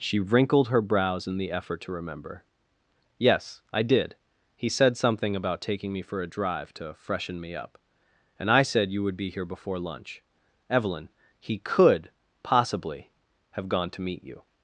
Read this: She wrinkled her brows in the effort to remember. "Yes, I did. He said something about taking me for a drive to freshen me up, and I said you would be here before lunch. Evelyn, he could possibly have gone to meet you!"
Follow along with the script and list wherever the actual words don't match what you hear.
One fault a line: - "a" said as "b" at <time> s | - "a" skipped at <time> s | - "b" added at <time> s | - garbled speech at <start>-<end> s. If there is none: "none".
none